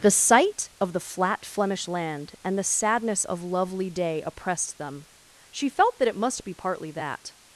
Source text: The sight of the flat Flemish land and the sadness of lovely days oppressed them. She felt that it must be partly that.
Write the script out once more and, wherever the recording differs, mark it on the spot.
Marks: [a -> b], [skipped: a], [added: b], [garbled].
The sight of the flat Flemish land and the sadness of lovely [days -> day] oppressed them. She felt that it must be partly that.